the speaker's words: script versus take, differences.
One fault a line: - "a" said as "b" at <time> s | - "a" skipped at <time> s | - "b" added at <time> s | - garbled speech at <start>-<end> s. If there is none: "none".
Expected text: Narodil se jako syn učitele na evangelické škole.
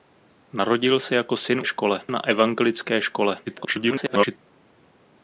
- "učitele" said as "škole" at 1.7 s
- garbled speech at 3.5-4.4 s